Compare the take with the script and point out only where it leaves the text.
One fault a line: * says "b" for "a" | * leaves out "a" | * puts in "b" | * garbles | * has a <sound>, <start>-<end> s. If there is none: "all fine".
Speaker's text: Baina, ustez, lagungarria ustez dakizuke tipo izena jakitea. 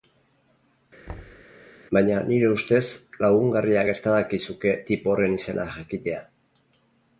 * has a thud, 1.1-1.4 s
* puts in "nire"
* says "gerta" for "ustez"
* puts in "horren"